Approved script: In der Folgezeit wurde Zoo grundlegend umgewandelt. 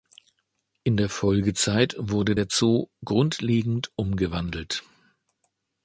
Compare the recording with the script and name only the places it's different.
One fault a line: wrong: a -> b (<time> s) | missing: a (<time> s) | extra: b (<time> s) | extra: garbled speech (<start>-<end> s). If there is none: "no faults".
extra: der (2.3 s)